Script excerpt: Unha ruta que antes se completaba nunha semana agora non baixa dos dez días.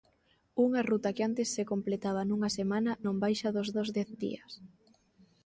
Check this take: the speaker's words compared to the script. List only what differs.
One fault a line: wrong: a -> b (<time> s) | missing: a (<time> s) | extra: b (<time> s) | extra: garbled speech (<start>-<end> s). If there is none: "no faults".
missing: agora (2.9 s)
extra: dos (3.8 s)